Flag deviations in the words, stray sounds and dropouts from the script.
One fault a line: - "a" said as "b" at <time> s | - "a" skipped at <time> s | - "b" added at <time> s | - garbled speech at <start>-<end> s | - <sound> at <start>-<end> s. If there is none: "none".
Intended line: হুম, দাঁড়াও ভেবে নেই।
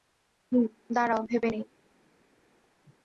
none